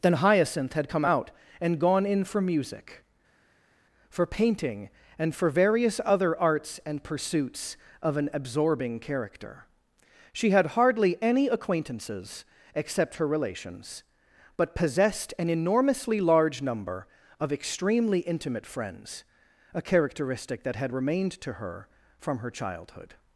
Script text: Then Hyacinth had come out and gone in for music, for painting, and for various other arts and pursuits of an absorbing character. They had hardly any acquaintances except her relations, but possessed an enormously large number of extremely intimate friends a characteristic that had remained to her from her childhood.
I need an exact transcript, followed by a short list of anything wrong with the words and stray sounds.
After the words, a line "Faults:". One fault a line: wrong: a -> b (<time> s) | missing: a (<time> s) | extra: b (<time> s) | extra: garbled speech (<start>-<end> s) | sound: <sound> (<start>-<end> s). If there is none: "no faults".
Then Hyacinth had come out and gone in for music, for painting, and for various other arts and pursuits of an absorbing character. She had hardly any acquaintances except her relations, but possessed an enormously large number of extremely intimate friends a characteristic that had remained to her from her childhood.
Faults:
wrong: They -> She (10.3 s)